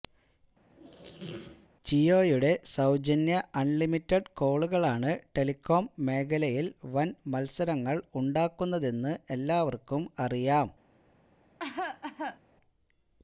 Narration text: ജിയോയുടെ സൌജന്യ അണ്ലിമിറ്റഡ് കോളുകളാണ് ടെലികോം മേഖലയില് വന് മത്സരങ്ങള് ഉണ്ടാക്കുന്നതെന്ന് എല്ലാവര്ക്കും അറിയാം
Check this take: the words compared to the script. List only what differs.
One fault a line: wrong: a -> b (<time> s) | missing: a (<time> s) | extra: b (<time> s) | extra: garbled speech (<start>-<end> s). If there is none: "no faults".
no faults